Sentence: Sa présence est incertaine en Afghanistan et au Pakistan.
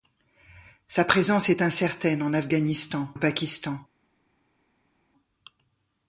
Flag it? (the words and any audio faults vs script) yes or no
yes